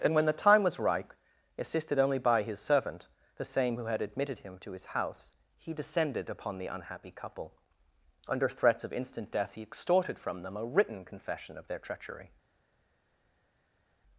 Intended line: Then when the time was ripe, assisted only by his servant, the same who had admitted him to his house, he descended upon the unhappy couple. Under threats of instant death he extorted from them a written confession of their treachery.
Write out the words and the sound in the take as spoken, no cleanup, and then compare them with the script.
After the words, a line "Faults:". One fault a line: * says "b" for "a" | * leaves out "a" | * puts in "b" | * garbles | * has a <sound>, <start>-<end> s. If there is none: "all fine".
And when the time was ripe, assisted only by his servant, the same who had admitted him to his house, he descended upon the unhappy couple. Under threats of instant death he extorted from them a written confession of their treachery.
Faults:
* says "And" for "Then"